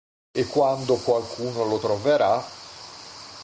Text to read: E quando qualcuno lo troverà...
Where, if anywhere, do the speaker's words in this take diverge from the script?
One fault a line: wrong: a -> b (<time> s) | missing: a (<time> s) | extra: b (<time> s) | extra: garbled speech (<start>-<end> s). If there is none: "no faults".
no faults